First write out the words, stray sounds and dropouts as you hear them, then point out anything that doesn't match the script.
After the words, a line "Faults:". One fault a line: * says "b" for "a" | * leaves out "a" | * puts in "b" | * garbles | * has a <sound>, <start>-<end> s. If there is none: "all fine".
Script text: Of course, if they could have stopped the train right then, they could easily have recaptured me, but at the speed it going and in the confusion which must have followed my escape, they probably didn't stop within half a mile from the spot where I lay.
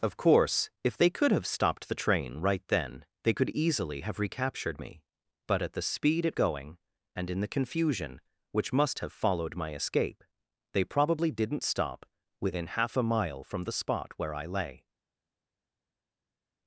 Of course, if they could have stopped the train right then, they could easily have recaptured me, but at the speed it going and in the confusion which must have followed my escape, they probably didn't stop within half a mile from the spot where I lay.
Faults:
all fine